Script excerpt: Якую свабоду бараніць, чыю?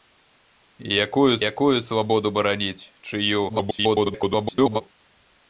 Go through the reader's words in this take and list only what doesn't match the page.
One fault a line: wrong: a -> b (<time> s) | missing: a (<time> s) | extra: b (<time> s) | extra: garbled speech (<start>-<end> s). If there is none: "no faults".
extra: якую (1.5 s)
extra: garbled speech (3.5-4.8 s)